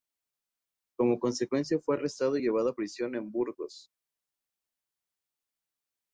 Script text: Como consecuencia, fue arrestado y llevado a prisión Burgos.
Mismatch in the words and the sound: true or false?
true